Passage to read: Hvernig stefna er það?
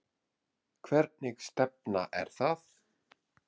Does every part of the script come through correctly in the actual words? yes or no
yes